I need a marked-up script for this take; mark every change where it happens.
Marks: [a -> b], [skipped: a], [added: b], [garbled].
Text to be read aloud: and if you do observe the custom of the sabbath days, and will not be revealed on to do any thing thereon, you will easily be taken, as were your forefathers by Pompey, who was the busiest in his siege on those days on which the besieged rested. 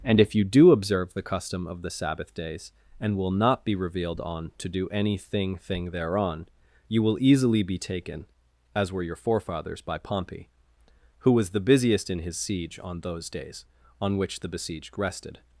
and if you do observe the custom of the sabbath days, and will not be revealed on to do any thing [added: thing] thereon, you will easily be taken, as were your forefathers by Pompey, who was the busiest in his siege on those days on which the besieged rested.